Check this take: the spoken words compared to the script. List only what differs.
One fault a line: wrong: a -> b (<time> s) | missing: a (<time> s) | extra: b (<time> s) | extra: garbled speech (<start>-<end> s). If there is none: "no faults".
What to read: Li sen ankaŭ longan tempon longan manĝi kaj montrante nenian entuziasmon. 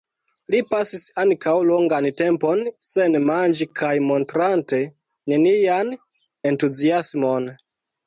wrong: sen -> pasis (0.7 s)
wrong: longan -> sen (2.9 s)